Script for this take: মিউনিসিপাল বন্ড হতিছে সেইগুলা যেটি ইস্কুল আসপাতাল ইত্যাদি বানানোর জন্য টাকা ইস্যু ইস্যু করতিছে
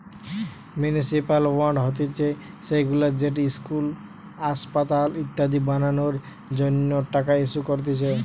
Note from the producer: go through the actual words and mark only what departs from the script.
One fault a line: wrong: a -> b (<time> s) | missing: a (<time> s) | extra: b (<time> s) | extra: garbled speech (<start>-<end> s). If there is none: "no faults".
missing: ইস্যু (7.6 s)